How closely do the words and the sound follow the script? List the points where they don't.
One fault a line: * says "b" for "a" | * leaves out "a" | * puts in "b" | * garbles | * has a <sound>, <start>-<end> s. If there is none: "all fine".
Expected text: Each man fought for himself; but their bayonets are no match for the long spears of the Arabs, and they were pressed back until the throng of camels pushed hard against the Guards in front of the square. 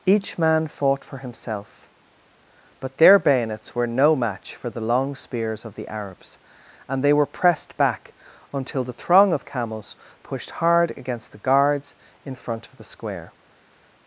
* says "were" for "are"